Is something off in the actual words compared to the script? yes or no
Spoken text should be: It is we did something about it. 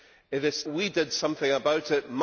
no